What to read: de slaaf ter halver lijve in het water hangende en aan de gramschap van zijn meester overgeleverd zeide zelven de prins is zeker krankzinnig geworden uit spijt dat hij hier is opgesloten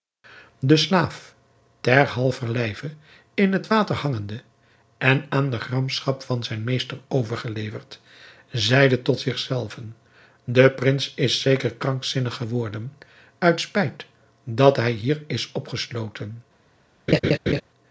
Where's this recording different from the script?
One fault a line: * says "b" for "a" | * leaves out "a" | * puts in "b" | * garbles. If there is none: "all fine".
* puts in "tot zich"